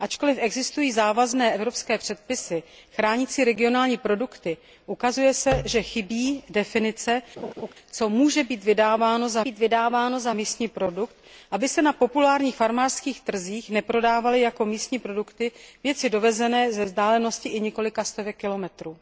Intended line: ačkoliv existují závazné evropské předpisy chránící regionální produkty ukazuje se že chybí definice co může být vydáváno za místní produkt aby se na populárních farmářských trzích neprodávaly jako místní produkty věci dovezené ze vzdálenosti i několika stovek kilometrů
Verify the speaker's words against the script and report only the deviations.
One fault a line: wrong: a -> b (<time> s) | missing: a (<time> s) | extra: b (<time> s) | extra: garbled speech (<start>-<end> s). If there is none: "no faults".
extra: být vydáváno za (9.4 s)